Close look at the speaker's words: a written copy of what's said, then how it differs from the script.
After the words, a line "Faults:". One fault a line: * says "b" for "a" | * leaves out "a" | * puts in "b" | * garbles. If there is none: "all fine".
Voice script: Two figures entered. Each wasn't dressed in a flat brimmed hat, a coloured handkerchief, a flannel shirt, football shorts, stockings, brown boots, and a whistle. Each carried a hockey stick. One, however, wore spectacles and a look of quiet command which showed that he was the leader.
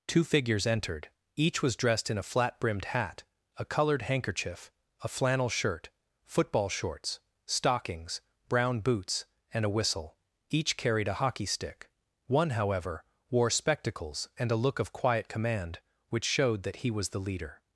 Two figures entered. Each was dressed in a flat brimmed hat, a coloured handkerchief, a flannel shirt, football shorts, stockings, brown boots, and a whistle. Each carried a hockey stick. One, however, wore spectacles and a look of quiet command which showed that he was the leader.
Faults:
* says "was" for "wasn't"